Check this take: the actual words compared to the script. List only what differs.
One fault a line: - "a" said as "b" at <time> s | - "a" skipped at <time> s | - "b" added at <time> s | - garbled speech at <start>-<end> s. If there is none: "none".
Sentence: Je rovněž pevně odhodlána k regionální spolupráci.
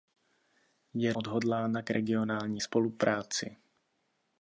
- "rovněž pevně" skipped at 1.1 s